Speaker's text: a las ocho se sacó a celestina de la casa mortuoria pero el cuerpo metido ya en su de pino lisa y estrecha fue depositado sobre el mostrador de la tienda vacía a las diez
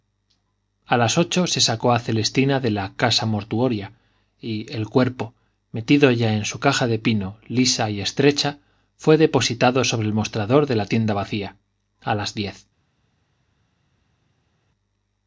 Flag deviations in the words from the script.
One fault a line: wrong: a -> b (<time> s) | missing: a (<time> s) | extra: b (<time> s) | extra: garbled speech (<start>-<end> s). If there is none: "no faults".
wrong: pero -> y (4.4 s)
extra: caja (6.6 s)